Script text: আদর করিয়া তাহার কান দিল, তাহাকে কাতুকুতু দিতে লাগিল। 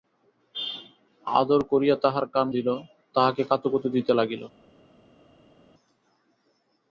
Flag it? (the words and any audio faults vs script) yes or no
no